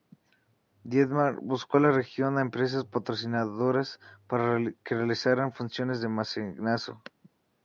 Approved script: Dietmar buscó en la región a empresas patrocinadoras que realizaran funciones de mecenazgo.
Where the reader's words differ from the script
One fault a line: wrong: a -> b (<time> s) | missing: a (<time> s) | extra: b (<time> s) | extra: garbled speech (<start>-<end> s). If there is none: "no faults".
extra: para (4.3 s)